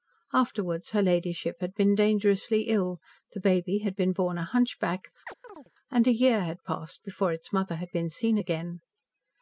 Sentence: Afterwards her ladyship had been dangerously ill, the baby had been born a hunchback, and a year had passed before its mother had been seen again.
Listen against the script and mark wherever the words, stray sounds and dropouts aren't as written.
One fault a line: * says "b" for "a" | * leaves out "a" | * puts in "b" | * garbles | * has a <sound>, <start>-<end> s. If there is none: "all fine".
* has a chirp, 5.3-5.7 s